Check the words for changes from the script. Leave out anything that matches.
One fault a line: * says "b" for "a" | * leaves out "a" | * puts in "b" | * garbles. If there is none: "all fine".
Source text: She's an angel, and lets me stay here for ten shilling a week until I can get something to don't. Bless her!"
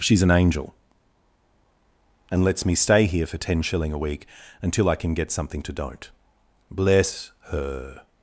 all fine